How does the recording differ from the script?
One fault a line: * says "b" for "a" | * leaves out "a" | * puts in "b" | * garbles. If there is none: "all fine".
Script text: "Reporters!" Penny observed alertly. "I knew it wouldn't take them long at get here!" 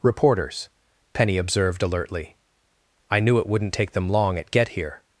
all fine